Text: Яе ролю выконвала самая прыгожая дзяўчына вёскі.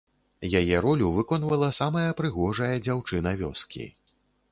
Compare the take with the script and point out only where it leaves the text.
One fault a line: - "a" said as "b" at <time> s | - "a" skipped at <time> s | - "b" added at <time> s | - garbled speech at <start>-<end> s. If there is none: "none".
none